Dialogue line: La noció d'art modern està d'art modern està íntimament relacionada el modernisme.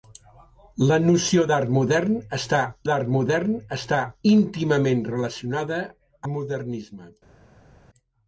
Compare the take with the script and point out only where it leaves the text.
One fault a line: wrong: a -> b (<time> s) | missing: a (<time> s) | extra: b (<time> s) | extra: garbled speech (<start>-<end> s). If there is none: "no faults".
no faults